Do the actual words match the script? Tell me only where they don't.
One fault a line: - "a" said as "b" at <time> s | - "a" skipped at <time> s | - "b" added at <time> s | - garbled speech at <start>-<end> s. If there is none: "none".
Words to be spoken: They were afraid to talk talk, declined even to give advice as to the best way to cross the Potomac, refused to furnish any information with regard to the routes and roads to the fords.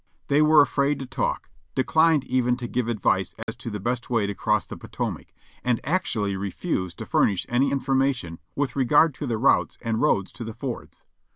- "talk" skipped at 1.5 s
- "and actually" added at 5.6 s